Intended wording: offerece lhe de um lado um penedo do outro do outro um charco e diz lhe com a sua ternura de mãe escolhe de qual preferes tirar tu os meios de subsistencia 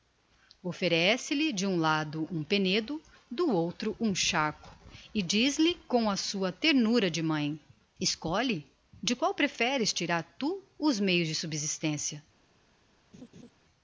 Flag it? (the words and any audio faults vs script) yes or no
yes